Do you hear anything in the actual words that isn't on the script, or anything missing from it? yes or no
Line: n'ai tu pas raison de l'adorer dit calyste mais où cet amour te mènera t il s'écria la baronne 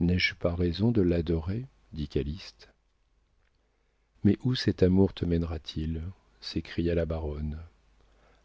yes